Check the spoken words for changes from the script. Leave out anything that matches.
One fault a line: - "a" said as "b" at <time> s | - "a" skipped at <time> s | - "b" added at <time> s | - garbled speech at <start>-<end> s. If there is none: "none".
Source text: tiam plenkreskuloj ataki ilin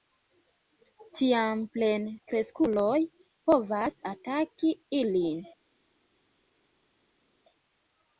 - "povas" added at 3.5 s